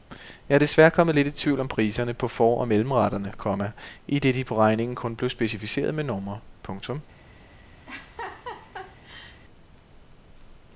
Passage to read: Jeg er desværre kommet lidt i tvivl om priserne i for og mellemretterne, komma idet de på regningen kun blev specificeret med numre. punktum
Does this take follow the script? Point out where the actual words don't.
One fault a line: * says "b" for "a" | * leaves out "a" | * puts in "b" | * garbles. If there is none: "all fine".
* says "på" for "i"